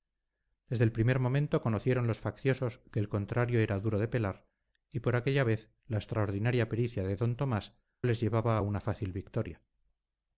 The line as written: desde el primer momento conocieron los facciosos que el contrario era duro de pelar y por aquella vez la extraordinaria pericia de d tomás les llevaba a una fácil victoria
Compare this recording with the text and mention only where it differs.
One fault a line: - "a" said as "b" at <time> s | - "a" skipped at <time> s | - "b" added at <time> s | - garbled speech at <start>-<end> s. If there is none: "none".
none